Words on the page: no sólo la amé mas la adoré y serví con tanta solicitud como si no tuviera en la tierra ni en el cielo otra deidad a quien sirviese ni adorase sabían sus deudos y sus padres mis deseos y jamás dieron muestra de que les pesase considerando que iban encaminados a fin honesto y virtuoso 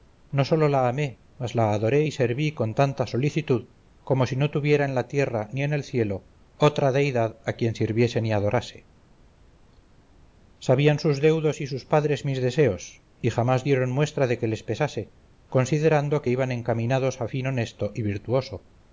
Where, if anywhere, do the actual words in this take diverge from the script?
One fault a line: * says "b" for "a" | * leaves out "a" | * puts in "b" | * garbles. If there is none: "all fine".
all fine